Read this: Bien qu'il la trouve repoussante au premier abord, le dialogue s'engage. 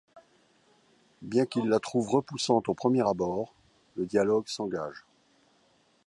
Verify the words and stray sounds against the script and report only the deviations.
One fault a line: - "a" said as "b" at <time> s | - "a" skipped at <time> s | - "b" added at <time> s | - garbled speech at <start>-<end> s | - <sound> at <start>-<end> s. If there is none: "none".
none